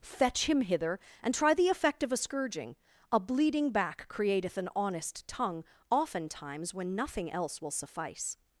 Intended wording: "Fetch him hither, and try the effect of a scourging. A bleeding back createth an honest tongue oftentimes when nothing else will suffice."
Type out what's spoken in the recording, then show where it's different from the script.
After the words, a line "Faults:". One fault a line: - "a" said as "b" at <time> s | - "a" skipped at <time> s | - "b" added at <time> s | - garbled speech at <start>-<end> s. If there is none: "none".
"Fetch him hither, and try the effect of a scourging. A bleeding back createth an honest tongue oftentimes when nothing else will suffice."
Faults:
none